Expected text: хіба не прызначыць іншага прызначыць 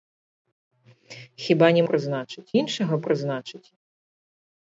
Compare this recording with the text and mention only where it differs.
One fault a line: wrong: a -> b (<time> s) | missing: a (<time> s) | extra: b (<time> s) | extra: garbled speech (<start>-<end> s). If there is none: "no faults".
no faults